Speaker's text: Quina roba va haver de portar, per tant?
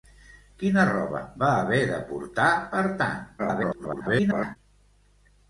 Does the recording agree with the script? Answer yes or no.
no